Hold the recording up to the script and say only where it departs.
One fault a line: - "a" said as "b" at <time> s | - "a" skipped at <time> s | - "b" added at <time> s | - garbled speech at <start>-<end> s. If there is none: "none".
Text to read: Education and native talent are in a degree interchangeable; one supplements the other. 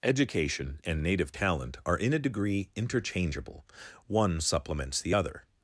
none